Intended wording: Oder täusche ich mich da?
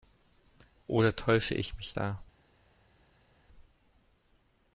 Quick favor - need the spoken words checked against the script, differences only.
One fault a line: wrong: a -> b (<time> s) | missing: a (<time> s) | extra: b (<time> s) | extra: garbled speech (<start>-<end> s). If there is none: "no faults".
no faults